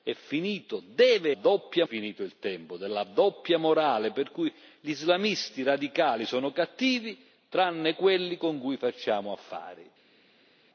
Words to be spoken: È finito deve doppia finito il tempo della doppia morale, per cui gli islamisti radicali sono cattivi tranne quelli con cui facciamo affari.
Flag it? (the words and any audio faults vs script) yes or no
no